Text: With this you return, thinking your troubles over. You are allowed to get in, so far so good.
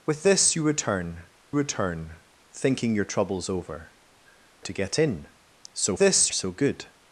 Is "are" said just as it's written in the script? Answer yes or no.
no